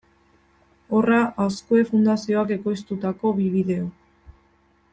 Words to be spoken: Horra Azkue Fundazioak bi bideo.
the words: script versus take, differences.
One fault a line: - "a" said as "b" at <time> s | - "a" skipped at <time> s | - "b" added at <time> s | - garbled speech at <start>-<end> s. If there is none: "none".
- "ekoiztutako" added at 2.6 s